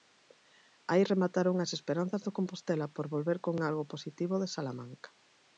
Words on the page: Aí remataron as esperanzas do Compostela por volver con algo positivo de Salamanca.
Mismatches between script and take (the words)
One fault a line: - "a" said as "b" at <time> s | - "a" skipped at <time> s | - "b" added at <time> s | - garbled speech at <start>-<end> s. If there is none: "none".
none